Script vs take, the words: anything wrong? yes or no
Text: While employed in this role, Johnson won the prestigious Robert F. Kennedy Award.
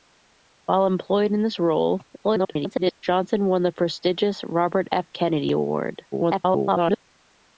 yes